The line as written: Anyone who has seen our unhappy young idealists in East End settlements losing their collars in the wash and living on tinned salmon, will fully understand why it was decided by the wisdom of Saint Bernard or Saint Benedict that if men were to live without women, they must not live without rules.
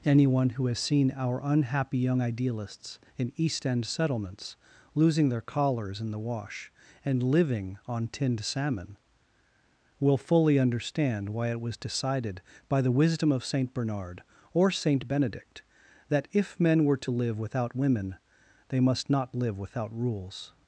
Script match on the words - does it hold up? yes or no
yes